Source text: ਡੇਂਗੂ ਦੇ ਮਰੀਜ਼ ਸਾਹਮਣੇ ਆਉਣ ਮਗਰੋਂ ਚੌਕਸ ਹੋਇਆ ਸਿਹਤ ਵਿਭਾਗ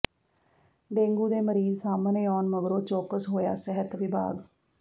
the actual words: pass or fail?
pass